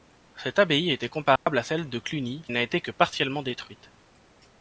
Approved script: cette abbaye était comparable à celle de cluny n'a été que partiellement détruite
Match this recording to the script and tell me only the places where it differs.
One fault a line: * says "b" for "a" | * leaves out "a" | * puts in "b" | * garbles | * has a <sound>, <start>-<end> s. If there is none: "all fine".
* has a dropout, 1.4-1.5 s